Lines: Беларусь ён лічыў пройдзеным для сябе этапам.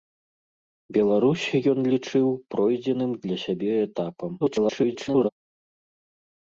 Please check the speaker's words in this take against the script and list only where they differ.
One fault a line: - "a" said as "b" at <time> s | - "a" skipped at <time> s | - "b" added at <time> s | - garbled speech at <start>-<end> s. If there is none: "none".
- garbled speech at 4.4-5.3 s